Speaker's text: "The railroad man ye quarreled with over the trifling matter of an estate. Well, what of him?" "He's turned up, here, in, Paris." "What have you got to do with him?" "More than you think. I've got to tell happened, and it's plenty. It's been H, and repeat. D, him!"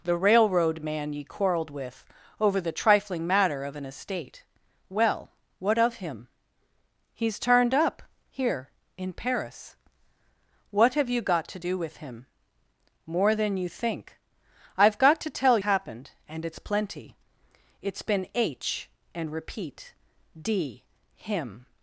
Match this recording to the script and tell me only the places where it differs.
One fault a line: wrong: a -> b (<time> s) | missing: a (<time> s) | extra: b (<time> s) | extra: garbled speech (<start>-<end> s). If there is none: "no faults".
no faults